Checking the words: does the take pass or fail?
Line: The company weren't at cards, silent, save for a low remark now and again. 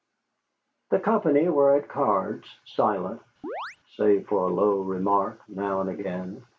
fail